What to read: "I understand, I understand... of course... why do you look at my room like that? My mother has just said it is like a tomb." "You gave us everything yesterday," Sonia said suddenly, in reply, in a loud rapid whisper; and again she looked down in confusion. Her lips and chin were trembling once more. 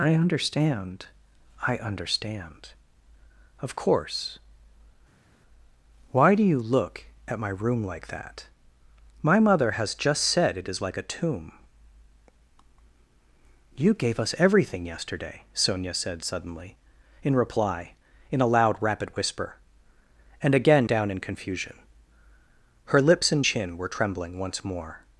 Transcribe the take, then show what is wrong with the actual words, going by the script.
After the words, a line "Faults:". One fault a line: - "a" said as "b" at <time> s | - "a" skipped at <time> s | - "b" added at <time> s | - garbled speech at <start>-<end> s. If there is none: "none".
"I understand, I understand... of course... why do you look at my room like that? My mother has just said it is like a tomb." "You gave us everything yesterday," Sonia said suddenly, in reply, in a loud rapid whisper; and again down in confusion. Her lips and chin were trembling once more.
Faults:
- "she looked" skipped at 20.9 s